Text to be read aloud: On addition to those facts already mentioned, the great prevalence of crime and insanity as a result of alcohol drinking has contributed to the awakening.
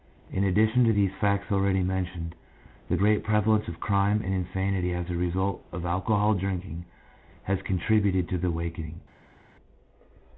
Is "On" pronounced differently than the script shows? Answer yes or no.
yes